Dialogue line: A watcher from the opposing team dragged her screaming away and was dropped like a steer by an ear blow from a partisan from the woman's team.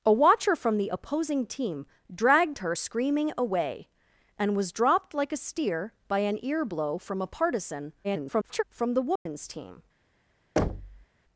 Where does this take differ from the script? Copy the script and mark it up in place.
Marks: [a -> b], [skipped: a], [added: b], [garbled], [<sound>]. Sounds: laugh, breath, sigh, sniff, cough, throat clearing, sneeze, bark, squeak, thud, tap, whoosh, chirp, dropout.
A watcher from the opposing team dragged her screaming away and was dropped like a steer by an ear blow from a partisan [garbled] from the woman's [dropout] team. [thud]